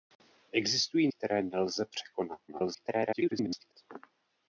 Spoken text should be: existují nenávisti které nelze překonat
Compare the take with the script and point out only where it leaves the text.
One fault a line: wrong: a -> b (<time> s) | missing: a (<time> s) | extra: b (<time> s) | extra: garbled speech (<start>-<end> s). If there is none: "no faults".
missing: nenávisti (1.1 s)
extra: garbled speech (2.5-3.7 s)